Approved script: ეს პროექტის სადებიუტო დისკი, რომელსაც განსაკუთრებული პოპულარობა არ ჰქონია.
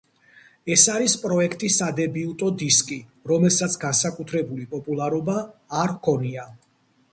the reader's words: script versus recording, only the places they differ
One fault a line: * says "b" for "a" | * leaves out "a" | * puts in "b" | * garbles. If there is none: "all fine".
* puts in "არის"